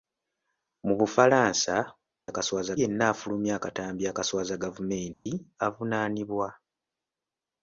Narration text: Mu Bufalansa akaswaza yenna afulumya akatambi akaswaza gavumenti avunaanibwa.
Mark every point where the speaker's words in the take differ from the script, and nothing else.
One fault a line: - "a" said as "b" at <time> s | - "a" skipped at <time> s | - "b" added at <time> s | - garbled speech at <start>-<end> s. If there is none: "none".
none